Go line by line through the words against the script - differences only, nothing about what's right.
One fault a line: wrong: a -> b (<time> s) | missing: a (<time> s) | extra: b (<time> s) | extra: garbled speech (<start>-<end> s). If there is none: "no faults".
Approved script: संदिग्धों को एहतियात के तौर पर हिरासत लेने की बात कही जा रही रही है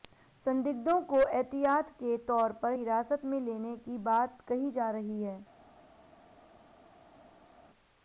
extra: में (3.2 s)
missing: रही (5.2 s)